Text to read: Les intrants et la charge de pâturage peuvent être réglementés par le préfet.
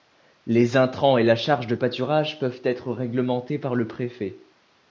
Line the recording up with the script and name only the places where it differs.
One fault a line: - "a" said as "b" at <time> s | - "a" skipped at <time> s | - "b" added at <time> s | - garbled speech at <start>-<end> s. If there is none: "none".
none